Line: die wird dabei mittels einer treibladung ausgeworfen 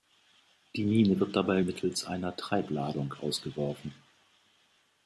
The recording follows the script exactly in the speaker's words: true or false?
false